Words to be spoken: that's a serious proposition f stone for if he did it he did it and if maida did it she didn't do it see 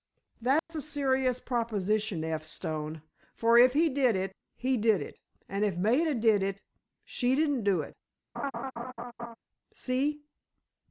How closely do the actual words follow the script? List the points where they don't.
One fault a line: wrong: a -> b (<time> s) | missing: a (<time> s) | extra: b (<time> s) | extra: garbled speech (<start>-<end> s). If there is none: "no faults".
no faults